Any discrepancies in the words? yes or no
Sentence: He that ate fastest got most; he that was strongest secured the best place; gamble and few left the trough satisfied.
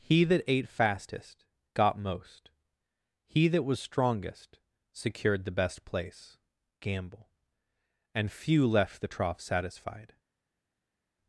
no